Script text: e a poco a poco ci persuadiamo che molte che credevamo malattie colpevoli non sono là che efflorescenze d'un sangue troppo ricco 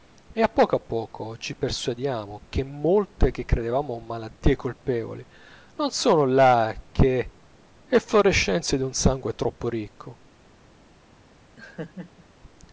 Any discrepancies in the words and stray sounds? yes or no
yes